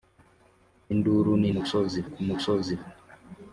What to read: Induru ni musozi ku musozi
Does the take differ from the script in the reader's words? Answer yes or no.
no